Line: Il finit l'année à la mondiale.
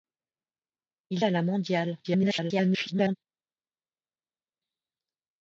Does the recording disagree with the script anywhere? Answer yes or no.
yes